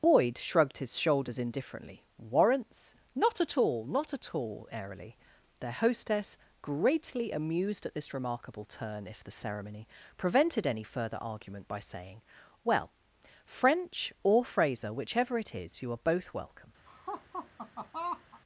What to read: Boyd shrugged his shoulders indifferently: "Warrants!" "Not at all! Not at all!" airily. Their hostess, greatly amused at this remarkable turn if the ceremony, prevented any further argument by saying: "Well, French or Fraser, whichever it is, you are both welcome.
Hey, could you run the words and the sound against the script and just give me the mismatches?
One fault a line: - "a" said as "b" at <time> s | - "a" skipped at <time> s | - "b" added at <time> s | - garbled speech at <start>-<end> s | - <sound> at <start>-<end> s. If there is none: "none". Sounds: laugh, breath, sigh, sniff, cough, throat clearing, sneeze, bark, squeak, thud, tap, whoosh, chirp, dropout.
- laugh at 16.9-18.4 s